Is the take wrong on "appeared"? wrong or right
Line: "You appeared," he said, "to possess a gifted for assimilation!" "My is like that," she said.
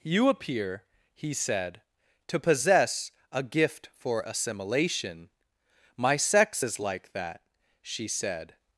wrong